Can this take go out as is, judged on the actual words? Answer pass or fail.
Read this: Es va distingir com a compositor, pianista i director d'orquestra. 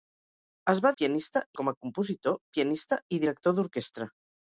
fail